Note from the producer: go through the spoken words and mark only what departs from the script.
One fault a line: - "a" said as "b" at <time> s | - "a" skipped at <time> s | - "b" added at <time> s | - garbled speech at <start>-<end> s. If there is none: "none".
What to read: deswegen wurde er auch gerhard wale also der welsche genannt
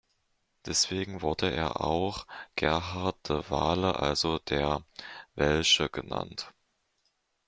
- "de" added at 3.3 s